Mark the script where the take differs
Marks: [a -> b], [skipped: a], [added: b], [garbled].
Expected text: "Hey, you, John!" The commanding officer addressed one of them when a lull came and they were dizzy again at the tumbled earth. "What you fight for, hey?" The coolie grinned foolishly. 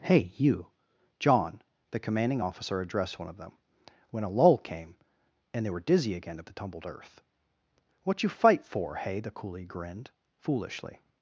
"Hey, you, John!" The commanding officer addressed one of them when a lull came and they were dizzy again at the tumbled earth. "What you fight for, hey?" The coolie grinned foolishly.